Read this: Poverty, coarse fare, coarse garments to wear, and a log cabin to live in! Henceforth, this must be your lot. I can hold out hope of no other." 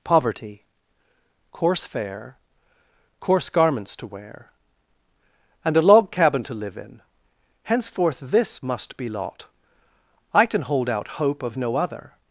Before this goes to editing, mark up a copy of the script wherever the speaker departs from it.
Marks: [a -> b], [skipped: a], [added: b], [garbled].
Poverty, coarse fare, coarse garments to wear, and a log cabin to live in! Henceforth, this must be [skipped: your] lot. I can hold out hope of no other."